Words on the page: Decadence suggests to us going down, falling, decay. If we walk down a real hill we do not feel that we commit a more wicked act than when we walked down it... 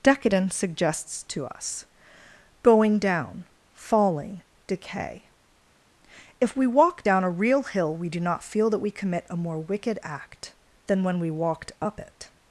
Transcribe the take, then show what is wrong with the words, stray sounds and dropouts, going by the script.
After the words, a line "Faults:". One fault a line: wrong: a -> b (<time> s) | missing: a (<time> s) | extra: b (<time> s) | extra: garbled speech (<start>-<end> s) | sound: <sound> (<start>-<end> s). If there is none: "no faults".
Decadence suggests to us going down, falling, decay. If we walk down a real hill we do not feel that we commit a more wicked act than when we walked up it...
Faults:
wrong: down -> up (11.8 s)